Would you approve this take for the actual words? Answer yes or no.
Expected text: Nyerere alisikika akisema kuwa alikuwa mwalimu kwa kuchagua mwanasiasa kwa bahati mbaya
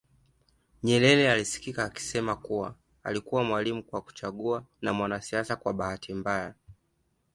no